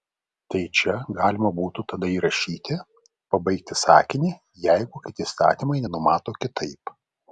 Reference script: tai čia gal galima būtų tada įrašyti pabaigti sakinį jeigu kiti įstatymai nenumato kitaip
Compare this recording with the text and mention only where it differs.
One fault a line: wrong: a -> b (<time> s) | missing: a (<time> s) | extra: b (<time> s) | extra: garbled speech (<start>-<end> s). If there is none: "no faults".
missing: gal (0.9 s)